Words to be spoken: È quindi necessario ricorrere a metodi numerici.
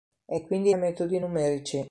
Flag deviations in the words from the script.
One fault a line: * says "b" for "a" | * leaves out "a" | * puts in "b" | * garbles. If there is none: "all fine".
* leaves out "necessario ricorrere"